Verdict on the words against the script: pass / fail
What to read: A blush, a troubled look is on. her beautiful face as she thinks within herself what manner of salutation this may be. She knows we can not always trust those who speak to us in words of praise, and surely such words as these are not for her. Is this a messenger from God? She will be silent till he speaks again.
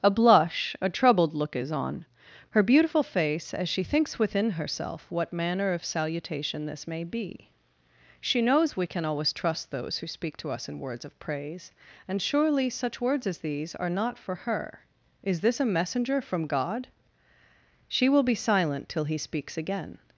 fail